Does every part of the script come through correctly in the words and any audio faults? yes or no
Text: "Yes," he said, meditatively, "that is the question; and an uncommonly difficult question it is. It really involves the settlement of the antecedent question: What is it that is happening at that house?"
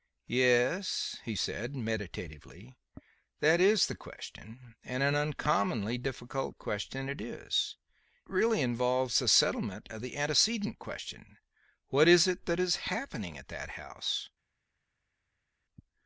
no